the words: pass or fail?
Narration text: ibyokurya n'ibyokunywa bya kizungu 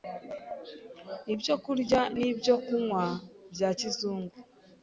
pass